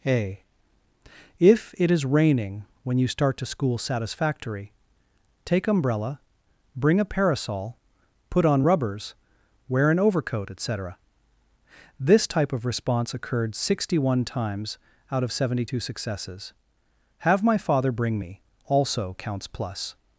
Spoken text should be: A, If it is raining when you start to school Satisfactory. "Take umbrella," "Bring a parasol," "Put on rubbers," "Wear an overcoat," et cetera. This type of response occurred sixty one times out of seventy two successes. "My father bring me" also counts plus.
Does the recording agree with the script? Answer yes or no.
no